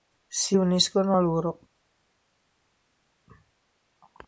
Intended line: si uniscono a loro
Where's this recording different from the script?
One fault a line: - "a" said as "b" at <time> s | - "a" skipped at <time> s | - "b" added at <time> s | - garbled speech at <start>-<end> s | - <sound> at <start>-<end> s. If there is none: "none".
none